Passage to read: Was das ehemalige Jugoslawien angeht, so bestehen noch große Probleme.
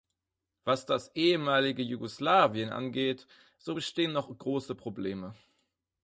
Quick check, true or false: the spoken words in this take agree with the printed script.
true